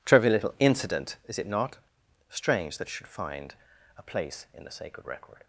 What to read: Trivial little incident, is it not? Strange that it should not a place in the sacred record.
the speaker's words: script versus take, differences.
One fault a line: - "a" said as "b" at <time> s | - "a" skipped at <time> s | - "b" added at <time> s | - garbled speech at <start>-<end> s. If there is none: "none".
- "not" said as "find" at 3.1 s